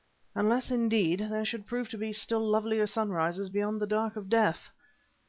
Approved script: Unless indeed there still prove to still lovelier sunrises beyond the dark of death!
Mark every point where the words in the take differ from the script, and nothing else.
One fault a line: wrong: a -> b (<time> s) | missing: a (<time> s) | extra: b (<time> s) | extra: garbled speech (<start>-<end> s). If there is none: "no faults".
wrong: still -> should (1.4 s)
extra: be (2.0 s)